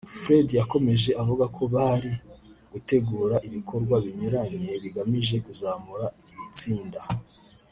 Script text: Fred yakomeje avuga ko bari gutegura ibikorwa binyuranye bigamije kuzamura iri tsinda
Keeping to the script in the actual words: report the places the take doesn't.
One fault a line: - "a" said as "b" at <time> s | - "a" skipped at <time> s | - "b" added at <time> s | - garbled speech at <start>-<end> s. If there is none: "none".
none